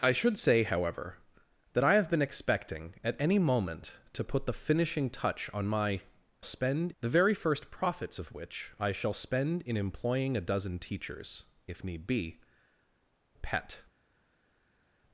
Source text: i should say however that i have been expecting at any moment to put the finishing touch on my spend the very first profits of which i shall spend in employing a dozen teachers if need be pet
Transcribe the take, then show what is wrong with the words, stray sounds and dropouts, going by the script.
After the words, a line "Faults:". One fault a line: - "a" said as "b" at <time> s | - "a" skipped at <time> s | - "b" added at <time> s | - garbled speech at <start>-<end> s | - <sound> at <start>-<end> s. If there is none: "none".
i should say however that i have been expecting at any moment to put the finishing touch on my spend the very first profits of which i shall spend in employing a dozen teachers if need be pet
Faults:
none